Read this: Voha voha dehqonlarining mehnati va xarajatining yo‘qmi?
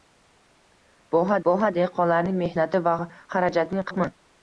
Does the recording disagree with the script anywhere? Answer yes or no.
no